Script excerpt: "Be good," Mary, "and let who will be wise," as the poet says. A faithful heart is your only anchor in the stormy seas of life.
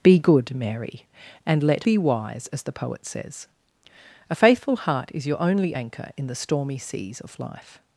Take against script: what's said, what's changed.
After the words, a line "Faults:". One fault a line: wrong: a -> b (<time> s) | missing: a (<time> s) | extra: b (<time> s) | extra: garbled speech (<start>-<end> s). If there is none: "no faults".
"Be good," Mary, "and let be wise," as the poet says. A faithful heart is your only anchor in the stormy seas of life.
Faults:
missing: who will (1.9 s)